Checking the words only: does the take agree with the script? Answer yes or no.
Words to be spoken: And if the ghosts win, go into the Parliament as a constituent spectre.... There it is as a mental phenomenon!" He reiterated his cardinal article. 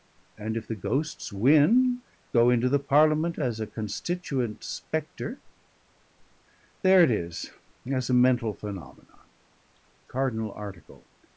no